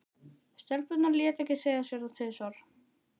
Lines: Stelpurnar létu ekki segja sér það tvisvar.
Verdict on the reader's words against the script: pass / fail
pass